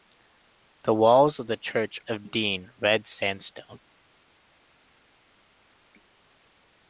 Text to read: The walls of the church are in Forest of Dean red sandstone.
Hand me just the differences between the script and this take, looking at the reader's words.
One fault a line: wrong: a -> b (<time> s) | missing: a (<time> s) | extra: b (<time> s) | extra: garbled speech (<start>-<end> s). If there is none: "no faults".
missing: are in Forest (2.0 s)